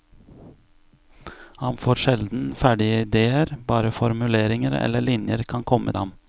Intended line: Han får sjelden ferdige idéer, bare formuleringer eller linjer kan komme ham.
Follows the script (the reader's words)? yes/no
yes